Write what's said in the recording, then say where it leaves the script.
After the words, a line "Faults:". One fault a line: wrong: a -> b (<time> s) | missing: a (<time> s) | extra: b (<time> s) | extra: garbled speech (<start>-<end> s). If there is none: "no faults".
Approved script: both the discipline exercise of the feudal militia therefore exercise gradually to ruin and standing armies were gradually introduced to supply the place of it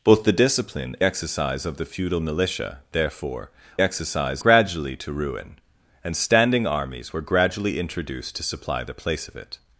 both the discipline exercise of the feudal militia therefore exercise gradually to ruin and standing armies were gradually introduced to supply the place of it
Faults:
no faults